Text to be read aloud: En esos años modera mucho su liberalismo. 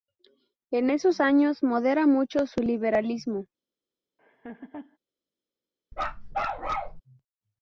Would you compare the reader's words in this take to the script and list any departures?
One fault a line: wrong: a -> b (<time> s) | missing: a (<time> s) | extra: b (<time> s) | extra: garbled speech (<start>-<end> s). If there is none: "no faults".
no faults